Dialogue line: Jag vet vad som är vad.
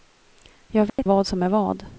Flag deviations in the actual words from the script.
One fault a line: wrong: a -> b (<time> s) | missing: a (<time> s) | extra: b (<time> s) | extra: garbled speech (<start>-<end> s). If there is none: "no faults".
no faults